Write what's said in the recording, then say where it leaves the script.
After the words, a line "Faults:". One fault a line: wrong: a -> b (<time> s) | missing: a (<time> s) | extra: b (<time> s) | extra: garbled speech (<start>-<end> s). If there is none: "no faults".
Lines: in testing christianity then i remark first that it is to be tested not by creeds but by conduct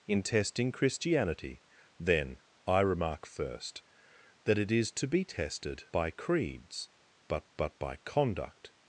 in testing christianity then i remark first that it is to be tested by creeds but but by conduct
Faults:
missing: not (5.8 s)
extra: but (7.6 s)